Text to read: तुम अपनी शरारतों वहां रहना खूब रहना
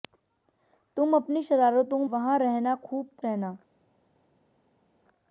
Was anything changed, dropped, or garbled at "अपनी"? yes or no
no